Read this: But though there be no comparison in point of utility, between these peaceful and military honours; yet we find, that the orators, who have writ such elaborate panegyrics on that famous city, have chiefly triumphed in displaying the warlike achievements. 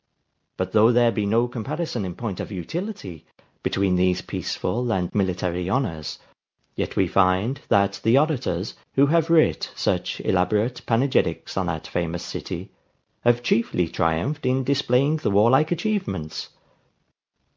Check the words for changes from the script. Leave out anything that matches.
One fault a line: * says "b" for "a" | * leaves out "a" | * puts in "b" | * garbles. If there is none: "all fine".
all fine